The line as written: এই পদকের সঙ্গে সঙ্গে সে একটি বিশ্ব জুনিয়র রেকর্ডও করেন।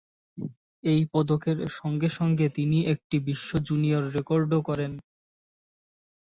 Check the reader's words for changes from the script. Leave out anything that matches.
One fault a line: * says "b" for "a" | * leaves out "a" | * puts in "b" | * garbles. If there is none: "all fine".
* says "তিনি" for "সে"